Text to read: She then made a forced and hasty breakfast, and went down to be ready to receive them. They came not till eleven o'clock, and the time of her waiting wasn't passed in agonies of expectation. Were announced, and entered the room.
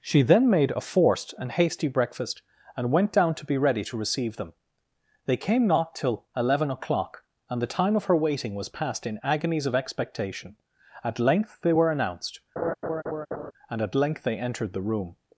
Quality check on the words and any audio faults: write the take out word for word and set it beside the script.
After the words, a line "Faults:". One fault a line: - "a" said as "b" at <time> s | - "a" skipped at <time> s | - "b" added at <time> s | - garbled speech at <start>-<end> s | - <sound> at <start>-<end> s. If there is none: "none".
She then made a forced and hasty breakfast, and went down to be ready to receive them. They came not till eleven o'clock, and the time of her waiting was passed in agonies of expectation. At length they were announced, and at length they entered the room.
Faults:
- "wasn't" said as "was" at 8.6 s
- "At length they" added at 11.0 s
- laugh at 12.6-13.5 s
- "at length they" added at 13.8 s